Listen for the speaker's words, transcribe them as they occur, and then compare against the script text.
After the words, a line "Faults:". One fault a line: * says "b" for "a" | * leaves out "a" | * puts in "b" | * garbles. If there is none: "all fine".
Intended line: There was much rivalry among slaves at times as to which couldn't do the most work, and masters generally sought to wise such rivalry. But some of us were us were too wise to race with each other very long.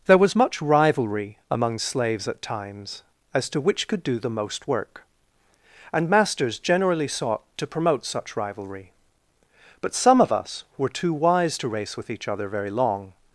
There was much rivalry among slaves at times as to which could do the most work, and masters generally sought to promote such rivalry. But some of us were too wise to race with each other very long.
Faults:
* says "could" for "couldn't"
* says "promote" for "wise"
* leaves out "us were"